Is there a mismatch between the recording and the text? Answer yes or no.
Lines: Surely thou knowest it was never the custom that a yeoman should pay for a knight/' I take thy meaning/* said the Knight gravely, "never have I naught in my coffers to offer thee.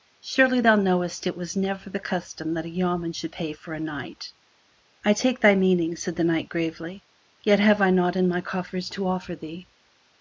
yes